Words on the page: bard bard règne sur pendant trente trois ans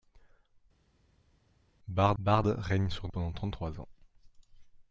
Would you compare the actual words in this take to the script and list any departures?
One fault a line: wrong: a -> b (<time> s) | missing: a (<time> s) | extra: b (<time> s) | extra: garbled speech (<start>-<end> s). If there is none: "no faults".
no faults